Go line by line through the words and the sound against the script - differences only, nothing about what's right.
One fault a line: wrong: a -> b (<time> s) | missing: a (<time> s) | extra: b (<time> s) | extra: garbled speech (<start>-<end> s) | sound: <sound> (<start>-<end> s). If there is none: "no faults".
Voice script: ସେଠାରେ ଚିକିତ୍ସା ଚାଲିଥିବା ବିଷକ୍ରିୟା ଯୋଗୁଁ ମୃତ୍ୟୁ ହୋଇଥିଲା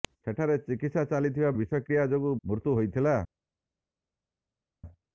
no faults